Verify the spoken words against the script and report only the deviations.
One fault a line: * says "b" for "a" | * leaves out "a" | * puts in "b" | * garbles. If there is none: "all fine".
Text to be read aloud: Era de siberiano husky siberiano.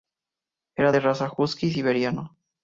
* says "raza" for "siberiano"